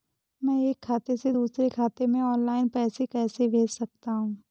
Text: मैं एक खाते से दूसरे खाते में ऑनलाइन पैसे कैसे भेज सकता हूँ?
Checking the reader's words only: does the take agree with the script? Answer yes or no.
yes